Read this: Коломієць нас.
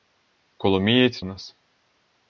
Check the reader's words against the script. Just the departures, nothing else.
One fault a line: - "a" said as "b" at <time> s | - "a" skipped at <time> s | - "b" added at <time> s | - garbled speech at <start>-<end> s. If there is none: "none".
none